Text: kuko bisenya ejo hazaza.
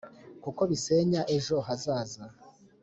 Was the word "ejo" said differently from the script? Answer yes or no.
no